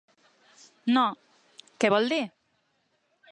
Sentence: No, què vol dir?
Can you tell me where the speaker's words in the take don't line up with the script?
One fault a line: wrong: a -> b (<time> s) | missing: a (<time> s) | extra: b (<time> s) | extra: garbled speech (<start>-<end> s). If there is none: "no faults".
no faults